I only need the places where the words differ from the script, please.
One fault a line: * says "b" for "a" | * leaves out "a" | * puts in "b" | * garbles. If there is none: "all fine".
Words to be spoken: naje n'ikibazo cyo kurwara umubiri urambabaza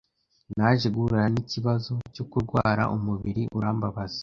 * puts in "guhura"